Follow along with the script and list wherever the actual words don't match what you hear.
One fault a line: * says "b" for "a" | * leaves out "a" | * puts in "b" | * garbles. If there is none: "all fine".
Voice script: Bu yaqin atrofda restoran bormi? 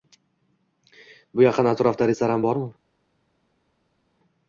all fine